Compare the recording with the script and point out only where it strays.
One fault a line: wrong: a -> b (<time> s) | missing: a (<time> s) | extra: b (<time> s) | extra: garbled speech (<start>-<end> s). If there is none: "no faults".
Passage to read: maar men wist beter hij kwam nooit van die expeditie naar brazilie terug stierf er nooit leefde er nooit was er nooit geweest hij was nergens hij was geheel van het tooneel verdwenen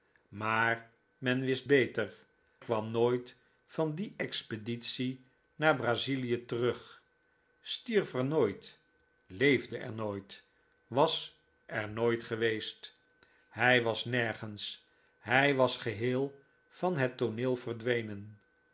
missing: hij (2.1 s)